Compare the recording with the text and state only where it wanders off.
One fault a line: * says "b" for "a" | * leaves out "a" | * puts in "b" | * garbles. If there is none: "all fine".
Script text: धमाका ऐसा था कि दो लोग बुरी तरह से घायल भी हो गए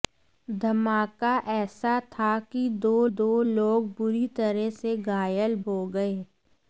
* puts in "दो"
* leaves out "भी"